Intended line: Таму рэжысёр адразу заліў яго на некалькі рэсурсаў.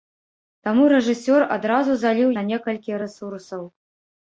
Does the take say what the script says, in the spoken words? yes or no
no